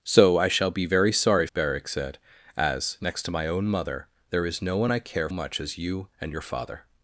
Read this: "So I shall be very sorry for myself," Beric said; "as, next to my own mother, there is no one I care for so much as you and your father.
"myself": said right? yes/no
no